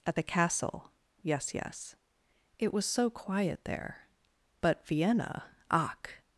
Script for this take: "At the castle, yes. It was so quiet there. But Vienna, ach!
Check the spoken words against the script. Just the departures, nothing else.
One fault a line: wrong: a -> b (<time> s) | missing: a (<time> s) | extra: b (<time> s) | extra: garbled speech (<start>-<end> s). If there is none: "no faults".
extra: yes (1.5 s)